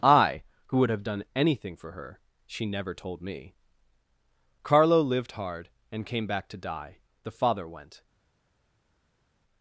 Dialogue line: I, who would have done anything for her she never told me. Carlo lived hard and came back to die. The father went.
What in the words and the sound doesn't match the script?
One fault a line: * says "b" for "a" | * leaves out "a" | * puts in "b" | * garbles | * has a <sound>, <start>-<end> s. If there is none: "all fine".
all fine